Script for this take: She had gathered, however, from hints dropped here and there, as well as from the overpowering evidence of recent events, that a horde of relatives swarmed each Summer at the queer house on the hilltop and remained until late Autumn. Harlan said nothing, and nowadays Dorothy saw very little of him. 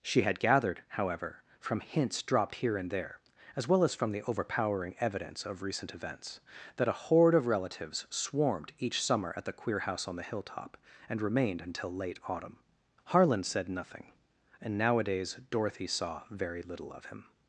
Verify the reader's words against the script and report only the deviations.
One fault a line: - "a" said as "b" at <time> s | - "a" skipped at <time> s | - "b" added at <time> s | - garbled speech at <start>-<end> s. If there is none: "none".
none